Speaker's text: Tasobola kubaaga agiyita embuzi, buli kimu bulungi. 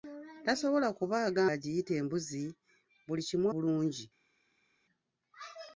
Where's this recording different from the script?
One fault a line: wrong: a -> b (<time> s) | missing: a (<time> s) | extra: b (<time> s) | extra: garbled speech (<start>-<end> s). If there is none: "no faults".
no faults